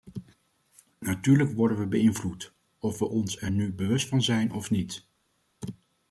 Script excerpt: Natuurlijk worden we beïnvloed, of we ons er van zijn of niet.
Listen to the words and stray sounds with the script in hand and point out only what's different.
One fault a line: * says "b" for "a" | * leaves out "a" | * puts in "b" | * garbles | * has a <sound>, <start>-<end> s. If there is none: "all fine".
* puts in "nu bewust"